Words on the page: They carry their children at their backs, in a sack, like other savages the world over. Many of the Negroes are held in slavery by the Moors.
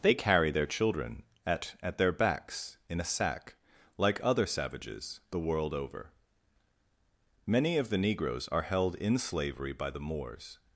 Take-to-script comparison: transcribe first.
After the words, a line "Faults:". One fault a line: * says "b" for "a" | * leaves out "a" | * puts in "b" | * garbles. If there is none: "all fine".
They carry their children at at their backs, in a sack, like other savages the world over. Many of the Negroes are held in slavery by the Moors.
Faults:
* puts in "at"